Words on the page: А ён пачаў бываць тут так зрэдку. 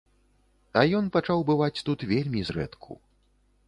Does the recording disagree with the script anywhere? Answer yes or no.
yes